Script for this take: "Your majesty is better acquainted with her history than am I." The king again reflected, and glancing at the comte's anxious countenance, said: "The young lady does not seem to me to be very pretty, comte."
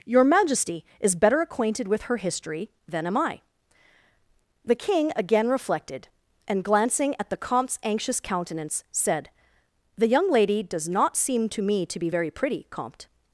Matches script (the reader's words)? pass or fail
pass